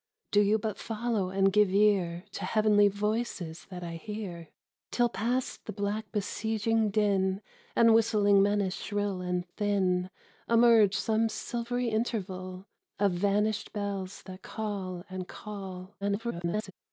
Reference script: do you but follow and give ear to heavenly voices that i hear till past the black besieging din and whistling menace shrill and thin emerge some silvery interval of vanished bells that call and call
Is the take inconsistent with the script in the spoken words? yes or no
yes